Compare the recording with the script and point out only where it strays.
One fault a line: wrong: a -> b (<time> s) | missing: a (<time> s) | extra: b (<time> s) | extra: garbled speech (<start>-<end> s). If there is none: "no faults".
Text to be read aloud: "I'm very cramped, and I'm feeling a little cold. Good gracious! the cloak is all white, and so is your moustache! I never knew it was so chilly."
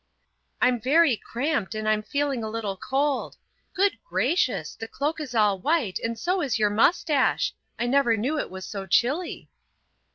no faults